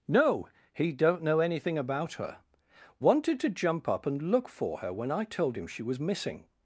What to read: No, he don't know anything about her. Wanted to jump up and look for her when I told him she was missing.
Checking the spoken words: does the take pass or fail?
pass